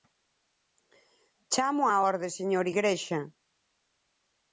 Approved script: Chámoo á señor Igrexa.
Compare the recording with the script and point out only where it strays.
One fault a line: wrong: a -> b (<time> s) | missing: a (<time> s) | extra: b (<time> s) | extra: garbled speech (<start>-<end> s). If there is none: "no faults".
extra: orde (2.1 s)